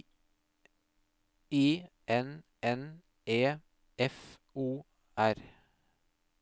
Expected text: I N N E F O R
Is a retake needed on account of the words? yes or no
no